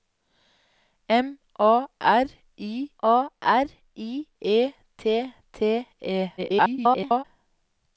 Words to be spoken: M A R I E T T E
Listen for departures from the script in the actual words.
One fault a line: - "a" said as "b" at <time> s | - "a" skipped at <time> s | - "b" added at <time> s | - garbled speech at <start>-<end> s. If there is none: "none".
- "A R I" added at 3.0 s
- garbled speech at 6.4-7.2 s